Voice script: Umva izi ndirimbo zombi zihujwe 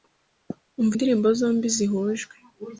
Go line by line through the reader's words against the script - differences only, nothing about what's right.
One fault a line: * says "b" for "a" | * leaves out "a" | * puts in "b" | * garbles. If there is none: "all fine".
* leaves out "izi"